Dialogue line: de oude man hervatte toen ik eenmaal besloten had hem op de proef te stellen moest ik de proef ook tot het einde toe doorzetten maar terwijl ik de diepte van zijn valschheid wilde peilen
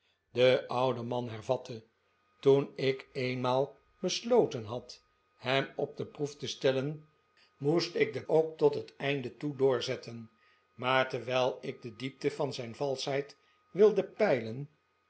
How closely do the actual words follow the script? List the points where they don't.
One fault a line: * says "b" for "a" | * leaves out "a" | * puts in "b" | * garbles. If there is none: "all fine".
* leaves out "proef"